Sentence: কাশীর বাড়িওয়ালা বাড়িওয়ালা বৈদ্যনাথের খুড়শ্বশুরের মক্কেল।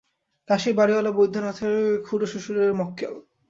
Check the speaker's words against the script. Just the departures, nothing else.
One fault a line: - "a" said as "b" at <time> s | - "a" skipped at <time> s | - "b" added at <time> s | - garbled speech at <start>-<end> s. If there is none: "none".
- "বাড়িওয়ালা" skipped at 1.1 s